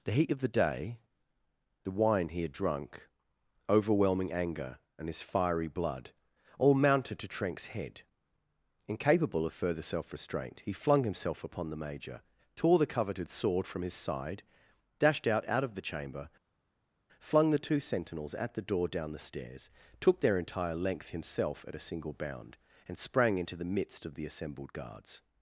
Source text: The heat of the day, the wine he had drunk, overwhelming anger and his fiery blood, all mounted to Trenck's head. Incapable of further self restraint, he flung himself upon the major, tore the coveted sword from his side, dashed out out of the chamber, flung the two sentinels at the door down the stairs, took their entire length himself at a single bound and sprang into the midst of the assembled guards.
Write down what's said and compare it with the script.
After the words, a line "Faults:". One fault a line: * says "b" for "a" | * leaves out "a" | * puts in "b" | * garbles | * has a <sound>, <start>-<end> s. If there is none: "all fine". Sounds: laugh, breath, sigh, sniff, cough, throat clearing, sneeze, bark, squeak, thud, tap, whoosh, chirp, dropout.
The heat of the day, the wine he had drunk, overwhelming anger and his fiery blood, all mounted to Trenck's head. Incapable of further self restraint, he flung himself upon the major, tore the coveted sword from his side, dashed out out of the chamber, flung the two sentinels at the door down the stairs, took their entire length himself at a single bound and sprang into the midst of the assembled guards.
Faults:
all fine